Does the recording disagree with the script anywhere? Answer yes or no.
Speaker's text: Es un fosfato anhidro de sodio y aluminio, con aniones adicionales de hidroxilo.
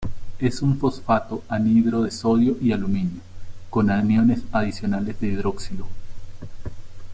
no